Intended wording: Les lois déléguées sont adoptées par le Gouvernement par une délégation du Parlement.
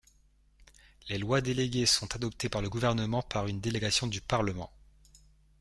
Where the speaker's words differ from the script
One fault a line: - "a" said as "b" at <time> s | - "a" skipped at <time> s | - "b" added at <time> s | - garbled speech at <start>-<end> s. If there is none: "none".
none